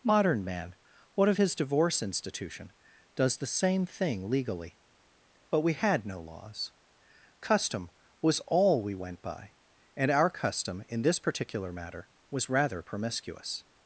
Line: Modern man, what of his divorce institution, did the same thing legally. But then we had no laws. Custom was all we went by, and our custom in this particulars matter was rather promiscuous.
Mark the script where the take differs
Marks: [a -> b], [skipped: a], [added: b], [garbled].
Modern man, what of his divorce institution, [did -> does] the same thing legally. But [skipped: then] we had no laws. Custom was all we went by, and our custom in this [particulars -> particular] matter was rather promiscuous.